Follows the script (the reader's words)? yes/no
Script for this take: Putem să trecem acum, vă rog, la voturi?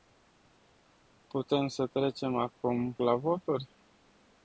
no